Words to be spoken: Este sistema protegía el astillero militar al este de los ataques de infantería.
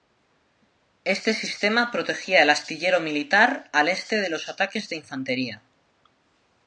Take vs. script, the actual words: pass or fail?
pass